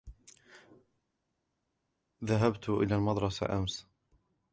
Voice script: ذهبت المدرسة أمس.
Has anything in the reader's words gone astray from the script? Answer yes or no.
yes